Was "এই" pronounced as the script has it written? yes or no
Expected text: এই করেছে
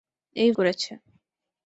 yes